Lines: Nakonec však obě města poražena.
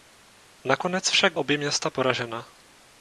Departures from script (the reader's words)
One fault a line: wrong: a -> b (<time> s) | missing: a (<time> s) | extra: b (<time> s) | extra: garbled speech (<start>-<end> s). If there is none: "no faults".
no faults